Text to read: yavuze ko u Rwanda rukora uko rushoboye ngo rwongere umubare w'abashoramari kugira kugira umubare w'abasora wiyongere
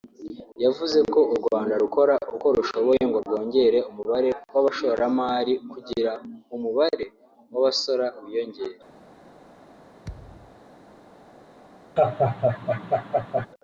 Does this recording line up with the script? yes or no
no